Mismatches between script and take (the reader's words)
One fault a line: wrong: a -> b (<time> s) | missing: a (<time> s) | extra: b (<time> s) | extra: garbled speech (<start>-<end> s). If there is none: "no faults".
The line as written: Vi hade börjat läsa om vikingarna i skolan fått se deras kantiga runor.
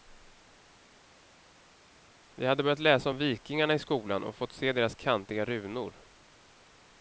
extra: och (4.2 s)